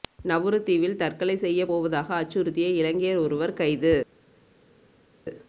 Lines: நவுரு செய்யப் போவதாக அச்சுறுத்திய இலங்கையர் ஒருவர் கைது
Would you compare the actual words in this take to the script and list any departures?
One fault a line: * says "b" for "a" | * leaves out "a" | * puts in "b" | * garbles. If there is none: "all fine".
* puts in "தீவில் தற்கொலை"